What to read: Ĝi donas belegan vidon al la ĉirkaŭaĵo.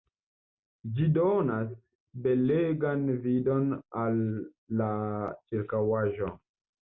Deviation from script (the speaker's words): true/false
false